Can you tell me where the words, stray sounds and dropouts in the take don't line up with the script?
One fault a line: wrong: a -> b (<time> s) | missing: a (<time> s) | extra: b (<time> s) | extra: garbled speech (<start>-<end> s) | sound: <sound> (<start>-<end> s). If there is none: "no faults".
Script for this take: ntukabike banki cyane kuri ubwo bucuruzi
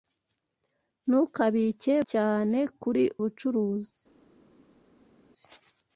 missing: banki (1.9 s)
missing: ubwo (3.0 s)